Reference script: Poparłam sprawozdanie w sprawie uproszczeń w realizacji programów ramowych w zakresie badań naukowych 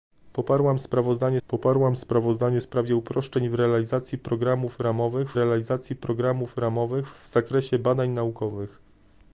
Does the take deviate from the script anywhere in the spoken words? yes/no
yes